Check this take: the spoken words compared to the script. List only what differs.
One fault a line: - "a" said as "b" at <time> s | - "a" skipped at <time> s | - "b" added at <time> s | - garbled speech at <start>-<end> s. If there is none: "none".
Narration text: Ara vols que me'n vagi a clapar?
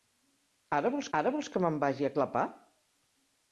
- "ara vols" added at 1.2 s